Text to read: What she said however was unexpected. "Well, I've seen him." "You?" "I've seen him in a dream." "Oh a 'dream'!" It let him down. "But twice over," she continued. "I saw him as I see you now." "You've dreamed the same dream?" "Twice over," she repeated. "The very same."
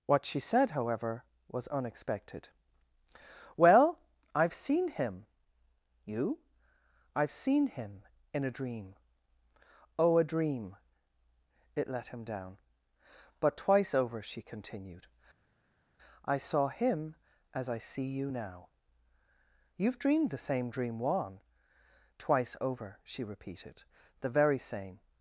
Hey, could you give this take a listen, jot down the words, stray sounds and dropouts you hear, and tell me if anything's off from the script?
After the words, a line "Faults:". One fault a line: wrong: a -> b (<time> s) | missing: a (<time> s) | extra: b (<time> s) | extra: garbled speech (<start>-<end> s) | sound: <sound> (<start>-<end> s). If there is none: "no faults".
What she said however was unexpected. "Well, I've seen him." "You?" "I've seen him in a dream." "Oh a 'dream'!" It let him down. "But twice over," she continued. "I saw him as I see you now." "You've dreamed the same dream?" juan "Twice over," she repeated. "The very same."
Faults:
extra: juan (21.0 s)